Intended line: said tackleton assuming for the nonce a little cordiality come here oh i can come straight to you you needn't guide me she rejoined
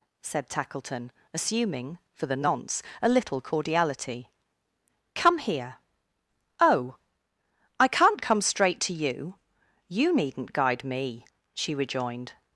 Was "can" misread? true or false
true